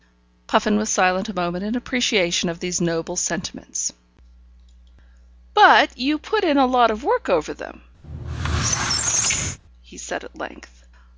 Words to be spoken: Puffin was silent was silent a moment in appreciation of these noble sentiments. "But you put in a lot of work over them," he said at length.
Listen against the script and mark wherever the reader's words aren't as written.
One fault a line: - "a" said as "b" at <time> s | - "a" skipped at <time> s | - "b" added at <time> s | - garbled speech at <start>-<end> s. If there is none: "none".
- "was silent" skipped at 1.3 s